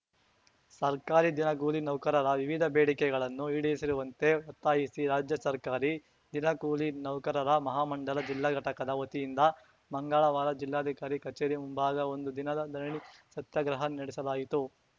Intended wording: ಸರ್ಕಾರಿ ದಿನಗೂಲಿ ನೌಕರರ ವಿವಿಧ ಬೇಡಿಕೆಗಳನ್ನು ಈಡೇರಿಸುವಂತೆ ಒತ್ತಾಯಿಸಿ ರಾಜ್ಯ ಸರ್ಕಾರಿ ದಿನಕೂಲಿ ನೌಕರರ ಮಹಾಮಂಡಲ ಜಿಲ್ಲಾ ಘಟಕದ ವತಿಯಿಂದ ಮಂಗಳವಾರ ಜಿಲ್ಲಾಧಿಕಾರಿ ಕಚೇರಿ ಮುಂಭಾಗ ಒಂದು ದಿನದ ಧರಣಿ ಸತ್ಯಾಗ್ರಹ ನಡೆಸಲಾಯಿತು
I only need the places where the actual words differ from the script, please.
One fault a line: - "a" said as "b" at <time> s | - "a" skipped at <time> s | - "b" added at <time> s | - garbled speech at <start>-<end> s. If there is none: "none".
none